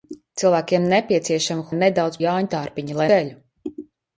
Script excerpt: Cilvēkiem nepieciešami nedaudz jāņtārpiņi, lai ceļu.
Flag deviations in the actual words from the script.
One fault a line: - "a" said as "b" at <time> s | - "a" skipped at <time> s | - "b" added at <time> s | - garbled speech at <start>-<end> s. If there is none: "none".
none